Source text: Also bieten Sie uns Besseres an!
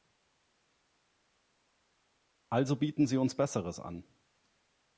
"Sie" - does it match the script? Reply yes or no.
yes